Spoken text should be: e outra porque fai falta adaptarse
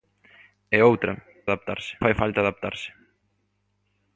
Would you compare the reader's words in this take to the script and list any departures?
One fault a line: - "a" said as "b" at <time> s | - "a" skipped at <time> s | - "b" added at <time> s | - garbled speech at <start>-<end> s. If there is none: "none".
- "porque" said as "adaptarse" at 1.5 s